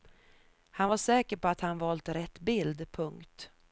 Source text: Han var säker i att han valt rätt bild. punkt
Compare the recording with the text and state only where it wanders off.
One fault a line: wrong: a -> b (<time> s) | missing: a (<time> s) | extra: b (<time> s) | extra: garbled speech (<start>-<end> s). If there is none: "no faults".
wrong: i -> på (1.4 s)